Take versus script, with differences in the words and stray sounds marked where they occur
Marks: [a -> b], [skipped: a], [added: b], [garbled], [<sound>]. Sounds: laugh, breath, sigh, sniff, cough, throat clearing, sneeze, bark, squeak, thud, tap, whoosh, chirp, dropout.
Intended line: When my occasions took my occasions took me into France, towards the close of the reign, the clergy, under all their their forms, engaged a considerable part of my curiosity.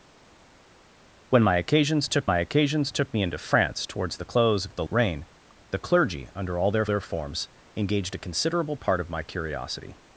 When my occasions took my occasions took me into France, towards the close of the reign, the clergy, under all their their forms, engaged a considerable part of my curiosity.